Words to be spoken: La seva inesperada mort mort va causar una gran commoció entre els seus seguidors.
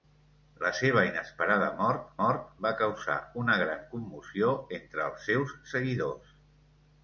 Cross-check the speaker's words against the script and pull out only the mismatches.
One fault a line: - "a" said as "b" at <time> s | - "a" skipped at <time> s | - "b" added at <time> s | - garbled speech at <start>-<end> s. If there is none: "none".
none